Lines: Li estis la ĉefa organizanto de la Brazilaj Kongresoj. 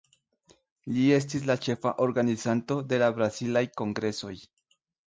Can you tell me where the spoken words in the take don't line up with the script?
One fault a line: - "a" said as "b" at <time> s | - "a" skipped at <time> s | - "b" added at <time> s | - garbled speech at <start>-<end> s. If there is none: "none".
none